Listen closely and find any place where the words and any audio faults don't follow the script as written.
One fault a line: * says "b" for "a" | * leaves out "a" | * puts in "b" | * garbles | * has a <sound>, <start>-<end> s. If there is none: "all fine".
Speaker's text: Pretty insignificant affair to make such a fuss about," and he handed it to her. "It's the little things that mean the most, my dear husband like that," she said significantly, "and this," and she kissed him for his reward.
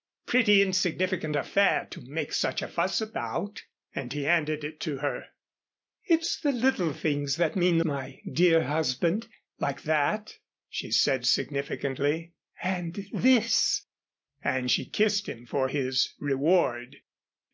* leaves out "most"